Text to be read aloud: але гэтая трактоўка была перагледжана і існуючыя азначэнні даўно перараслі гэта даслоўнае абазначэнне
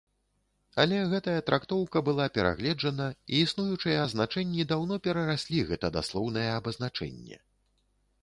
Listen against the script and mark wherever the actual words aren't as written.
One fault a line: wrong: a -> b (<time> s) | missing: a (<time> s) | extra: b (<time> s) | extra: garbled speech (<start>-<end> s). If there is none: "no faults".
no faults